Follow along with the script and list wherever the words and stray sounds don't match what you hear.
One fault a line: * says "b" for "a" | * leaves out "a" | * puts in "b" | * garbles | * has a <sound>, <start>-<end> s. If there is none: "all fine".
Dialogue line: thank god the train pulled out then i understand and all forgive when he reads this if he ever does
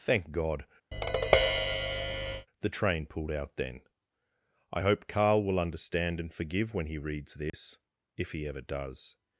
* has a tap, 0.9-2.5 s
* puts in "hope carl will"
* leaves out "all"
* has a dropout, 7.5-7.5 s